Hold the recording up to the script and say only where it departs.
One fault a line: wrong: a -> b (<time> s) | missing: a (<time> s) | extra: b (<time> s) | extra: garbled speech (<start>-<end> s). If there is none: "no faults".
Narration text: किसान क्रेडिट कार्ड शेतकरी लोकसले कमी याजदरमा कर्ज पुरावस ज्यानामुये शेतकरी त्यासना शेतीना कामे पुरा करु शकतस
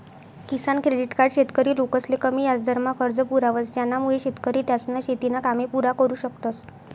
no faults